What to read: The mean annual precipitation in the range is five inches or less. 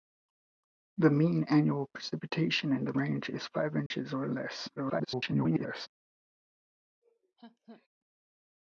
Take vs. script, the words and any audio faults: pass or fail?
fail